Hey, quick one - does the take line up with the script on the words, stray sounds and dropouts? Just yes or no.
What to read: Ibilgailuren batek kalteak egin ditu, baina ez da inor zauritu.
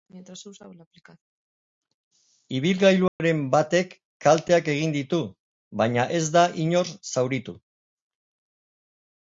no